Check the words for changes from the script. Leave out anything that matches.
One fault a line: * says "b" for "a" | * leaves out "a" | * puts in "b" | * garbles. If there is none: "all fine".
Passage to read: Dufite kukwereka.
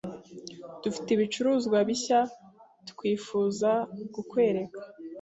* puts in "ibicuruzwa bishya twifuza"